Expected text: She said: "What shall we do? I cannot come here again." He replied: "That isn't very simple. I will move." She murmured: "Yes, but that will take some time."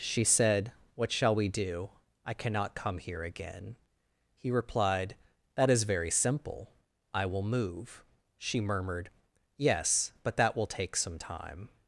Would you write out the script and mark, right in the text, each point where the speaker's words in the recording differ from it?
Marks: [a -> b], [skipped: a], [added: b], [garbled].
She said: "What shall we do? I cannot come here again." He replied: "That [isn't -> is] very simple. I will move." She murmured: "Yes, but that will take some time."